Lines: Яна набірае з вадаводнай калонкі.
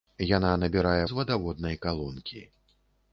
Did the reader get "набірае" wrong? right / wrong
right